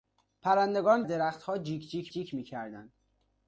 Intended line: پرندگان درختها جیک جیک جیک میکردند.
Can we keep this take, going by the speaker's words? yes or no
yes